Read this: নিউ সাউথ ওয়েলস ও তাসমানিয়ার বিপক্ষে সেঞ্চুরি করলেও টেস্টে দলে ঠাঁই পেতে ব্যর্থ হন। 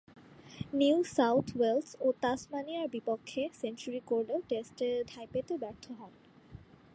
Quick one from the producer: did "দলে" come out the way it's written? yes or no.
no